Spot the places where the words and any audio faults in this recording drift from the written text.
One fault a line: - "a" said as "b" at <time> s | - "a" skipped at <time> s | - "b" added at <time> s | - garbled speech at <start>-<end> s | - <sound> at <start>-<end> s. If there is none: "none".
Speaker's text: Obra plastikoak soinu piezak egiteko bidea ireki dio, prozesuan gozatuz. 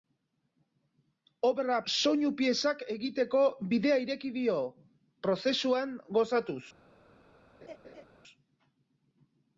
- "plastikoak" skipped at 1.8 s
- laugh at 7.6-8.0 s